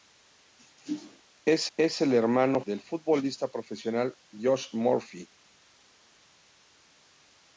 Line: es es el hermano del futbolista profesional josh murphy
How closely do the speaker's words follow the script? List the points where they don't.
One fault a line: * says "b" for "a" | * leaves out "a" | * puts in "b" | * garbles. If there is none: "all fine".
all fine